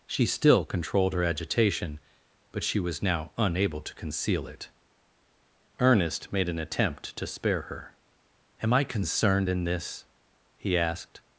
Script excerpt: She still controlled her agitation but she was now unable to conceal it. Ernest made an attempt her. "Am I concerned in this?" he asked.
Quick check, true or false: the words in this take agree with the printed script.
false